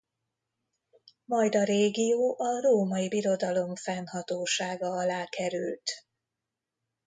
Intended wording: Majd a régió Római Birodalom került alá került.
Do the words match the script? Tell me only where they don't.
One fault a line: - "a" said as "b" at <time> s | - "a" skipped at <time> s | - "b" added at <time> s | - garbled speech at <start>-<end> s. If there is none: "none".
- "a" added at 2.4 s
- "került" said as "fennhatósága" at 3.8 s